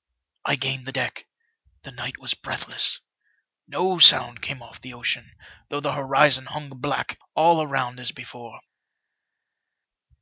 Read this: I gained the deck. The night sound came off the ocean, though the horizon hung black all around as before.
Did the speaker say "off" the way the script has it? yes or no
yes